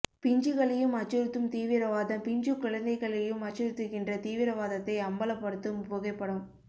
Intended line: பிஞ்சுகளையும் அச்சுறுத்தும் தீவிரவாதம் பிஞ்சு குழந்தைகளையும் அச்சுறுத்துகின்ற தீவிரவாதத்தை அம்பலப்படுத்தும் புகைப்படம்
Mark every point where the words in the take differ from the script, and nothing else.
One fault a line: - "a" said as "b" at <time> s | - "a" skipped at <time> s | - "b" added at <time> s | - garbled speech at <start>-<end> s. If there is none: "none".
none